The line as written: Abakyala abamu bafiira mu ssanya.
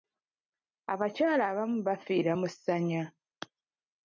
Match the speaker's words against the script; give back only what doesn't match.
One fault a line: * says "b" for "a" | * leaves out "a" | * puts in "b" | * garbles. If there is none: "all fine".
all fine